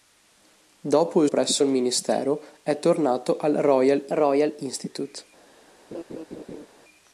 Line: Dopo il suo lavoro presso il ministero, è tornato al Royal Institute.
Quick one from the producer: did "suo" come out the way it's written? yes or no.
no